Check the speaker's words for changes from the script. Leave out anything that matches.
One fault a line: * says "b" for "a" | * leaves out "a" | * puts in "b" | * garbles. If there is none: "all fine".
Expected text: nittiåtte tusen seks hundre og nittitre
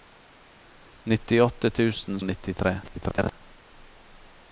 * leaves out "seks hundre"
* garbles